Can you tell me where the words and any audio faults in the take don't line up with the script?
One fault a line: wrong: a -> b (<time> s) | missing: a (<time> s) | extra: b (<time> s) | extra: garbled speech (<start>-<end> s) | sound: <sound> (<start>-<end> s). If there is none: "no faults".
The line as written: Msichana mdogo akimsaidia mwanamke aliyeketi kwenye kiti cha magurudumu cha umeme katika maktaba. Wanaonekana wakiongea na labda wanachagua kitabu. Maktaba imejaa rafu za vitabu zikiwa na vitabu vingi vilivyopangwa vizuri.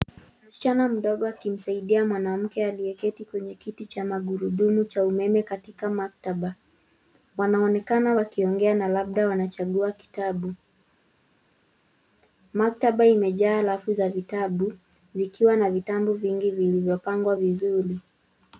no faults